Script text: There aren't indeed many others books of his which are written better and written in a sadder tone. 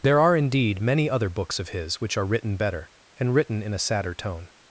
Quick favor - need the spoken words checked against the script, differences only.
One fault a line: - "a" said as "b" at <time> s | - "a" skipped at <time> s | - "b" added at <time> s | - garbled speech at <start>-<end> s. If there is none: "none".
- "aren't" said as "are" at 0.2 s
- "others" said as "other" at 1.1 s